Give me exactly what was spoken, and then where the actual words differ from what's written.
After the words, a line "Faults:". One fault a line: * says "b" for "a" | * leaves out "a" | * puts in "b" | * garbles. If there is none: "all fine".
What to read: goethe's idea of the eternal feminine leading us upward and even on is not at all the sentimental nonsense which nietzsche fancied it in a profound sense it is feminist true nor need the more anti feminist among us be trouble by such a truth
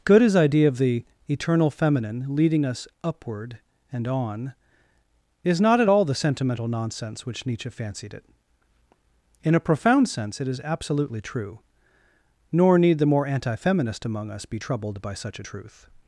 goethe's idea of the eternal feminine leading us upward and on is not at all the sentimental nonsense which nietzsche fancied it in a profound sense it is absolutely true nor need the more anti feminist among us be troubled by such a truth
Faults:
* leaves out "even"
* says "absolutely" for "feminist"
* says "troubled" for "trouble"